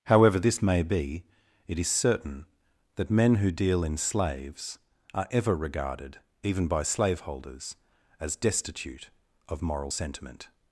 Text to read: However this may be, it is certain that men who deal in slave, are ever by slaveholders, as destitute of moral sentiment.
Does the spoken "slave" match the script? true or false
false